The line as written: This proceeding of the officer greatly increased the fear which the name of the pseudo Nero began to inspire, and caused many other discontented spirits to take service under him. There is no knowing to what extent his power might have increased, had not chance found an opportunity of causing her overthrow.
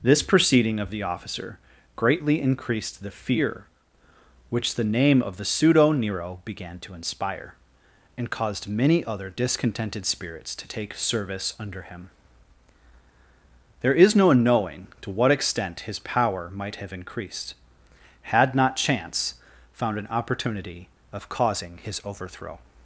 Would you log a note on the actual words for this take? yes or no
yes